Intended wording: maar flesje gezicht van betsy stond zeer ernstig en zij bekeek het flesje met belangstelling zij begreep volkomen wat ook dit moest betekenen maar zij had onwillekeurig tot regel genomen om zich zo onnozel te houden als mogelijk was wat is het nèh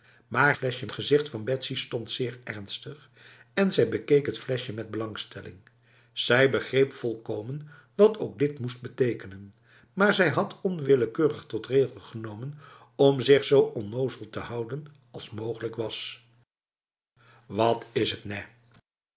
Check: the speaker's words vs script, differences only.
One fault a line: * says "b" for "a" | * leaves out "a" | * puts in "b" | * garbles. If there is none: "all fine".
all fine